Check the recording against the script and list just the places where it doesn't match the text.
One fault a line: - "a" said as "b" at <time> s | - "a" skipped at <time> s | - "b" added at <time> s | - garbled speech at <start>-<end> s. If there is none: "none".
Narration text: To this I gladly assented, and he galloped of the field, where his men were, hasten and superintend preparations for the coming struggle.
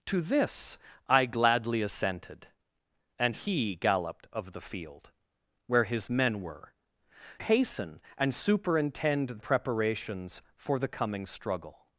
none